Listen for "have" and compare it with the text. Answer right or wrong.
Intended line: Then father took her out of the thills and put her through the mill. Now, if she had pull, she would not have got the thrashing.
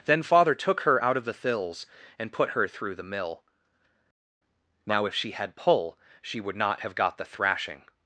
right